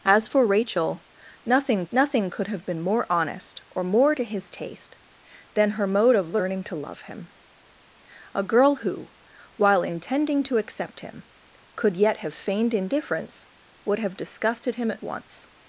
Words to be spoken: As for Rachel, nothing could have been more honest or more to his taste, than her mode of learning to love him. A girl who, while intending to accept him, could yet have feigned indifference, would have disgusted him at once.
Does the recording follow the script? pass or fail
fail